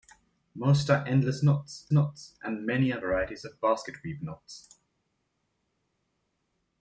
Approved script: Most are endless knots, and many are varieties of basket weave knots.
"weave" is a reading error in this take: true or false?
false